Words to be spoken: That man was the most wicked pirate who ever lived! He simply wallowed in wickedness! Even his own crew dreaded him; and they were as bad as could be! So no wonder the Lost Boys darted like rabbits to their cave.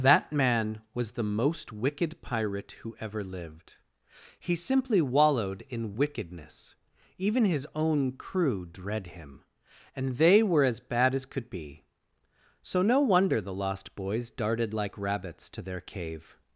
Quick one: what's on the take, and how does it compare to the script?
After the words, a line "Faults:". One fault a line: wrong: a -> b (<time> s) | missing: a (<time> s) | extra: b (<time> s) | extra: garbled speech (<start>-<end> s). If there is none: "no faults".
That man was the most wicked pirate who ever lived! He simply wallowed in wickedness! Even his own crew dread him; and they were as bad as could be! So no wonder the Lost Boys darted like rabbits to their cave.
Faults:
wrong: dreaded -> dread (8.6 s)